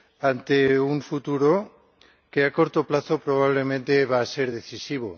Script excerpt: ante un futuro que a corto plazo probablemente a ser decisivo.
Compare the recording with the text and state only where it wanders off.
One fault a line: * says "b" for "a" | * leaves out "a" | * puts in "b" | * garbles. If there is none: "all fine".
* puts in "va"